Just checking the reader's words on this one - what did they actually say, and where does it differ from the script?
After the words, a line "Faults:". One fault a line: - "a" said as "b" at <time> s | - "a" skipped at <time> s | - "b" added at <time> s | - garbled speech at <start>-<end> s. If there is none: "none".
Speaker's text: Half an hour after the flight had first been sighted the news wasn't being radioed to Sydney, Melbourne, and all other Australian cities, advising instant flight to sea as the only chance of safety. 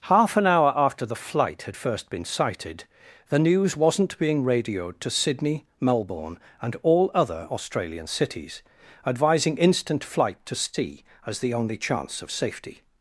Half an hour after the flight had first been sighted the news wasn't being radioed to Sydney, Melbourne, and all other Australian cities, advising instant flight to sea as the only chance of safety.
Faults:
none